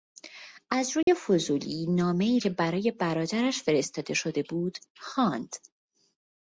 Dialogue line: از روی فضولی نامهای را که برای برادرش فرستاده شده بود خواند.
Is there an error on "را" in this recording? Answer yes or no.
yes